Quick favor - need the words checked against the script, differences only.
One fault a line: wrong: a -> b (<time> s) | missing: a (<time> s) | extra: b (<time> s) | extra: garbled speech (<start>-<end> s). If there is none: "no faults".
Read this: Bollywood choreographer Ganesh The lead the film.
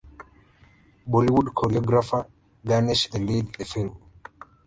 no faults